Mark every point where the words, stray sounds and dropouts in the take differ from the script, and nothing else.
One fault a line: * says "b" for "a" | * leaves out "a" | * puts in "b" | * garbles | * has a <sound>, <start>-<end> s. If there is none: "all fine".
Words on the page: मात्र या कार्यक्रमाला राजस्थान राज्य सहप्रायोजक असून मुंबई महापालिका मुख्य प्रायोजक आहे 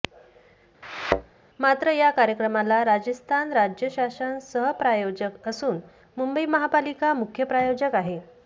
* has a thud, 0.8-1.3 s
* puts in "शासन"